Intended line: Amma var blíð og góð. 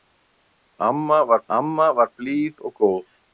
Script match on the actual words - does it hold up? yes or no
no